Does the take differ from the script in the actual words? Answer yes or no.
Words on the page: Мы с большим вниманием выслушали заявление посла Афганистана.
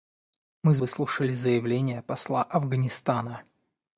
yes